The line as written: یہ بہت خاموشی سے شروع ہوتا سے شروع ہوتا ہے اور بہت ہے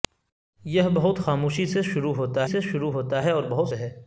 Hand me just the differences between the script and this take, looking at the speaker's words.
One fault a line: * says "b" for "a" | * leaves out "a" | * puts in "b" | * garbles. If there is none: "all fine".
all fine